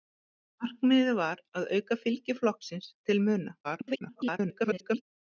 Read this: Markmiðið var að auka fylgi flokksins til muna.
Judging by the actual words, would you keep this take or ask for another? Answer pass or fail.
fail